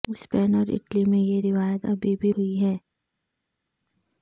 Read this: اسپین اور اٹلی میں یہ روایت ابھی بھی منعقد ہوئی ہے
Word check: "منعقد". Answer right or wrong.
wrong